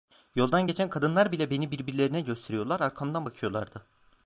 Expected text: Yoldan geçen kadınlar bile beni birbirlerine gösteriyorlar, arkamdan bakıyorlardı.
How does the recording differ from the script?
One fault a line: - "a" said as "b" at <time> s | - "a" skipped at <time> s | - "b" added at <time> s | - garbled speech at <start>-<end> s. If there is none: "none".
none